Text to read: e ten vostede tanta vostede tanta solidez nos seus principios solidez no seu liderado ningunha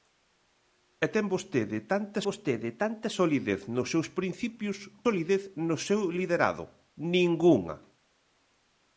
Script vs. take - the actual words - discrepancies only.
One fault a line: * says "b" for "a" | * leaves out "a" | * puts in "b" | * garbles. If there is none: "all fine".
all fine